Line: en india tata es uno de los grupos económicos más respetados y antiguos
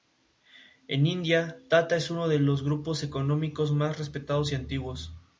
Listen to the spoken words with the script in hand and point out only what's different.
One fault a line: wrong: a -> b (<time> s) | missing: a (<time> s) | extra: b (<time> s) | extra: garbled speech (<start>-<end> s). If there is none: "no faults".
no faults